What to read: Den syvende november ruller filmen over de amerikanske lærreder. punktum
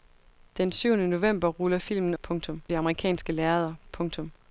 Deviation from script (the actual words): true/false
true